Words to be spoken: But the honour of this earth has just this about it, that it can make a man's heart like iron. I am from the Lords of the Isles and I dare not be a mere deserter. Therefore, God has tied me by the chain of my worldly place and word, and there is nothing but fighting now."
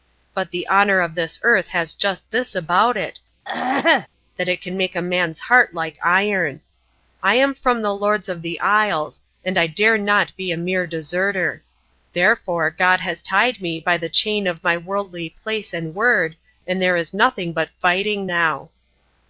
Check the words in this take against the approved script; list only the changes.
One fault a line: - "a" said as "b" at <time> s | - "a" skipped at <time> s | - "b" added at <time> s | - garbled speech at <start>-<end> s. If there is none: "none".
none